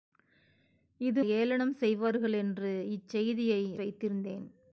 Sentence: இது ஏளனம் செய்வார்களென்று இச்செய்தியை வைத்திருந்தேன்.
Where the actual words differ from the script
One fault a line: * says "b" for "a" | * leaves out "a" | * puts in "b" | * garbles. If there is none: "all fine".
all fine